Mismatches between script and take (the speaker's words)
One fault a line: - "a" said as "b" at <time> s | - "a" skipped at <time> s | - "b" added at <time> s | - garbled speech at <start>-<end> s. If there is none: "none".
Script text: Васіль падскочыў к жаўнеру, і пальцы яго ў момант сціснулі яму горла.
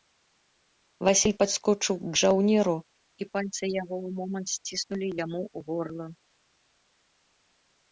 none